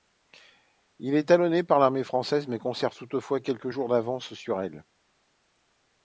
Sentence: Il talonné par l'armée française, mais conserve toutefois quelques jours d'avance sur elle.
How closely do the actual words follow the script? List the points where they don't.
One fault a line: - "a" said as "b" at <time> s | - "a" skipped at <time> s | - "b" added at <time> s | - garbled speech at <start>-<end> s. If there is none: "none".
- "est" added at 1.1 s